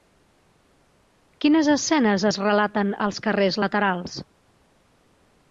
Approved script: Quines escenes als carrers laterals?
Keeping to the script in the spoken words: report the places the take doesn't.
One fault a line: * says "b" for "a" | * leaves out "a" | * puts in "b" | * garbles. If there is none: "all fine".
* puts in "es relaten"